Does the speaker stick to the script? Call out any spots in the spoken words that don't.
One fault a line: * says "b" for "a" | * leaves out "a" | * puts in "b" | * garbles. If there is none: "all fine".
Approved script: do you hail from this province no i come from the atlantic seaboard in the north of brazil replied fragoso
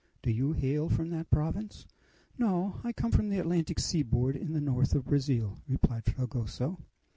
* says "that" for "this"